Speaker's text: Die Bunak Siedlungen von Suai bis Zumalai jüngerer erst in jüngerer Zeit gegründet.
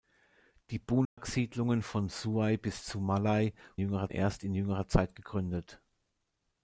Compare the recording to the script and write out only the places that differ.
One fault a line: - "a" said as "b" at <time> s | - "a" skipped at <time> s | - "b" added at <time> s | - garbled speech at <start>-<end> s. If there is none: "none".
none